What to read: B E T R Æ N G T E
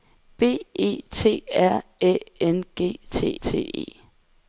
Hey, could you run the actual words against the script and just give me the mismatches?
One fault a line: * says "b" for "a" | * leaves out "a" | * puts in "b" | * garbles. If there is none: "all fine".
* puts in "T"